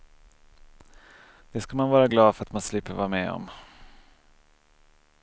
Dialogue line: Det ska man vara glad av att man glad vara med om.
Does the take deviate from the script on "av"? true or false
true